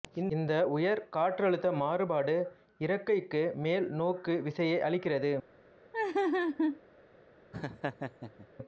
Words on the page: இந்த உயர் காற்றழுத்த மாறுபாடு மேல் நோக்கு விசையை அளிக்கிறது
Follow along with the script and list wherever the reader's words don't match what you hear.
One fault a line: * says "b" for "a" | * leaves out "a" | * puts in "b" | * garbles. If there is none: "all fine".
* puts in "இறக்கைக்கு"